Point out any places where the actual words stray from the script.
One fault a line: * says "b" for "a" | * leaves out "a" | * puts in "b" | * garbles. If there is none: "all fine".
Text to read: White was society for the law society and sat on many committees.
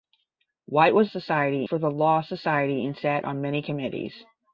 all fine